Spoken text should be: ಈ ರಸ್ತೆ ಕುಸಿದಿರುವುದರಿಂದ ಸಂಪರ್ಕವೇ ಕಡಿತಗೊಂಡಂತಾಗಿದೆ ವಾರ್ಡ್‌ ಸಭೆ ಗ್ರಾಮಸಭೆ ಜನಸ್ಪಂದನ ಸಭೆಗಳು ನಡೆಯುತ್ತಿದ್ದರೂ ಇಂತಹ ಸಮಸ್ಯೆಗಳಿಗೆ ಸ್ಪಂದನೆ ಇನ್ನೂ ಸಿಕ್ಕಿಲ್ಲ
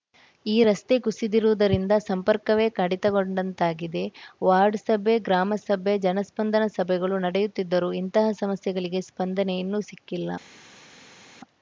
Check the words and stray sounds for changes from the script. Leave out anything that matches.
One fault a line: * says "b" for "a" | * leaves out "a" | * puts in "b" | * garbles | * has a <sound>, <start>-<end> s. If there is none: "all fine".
all fine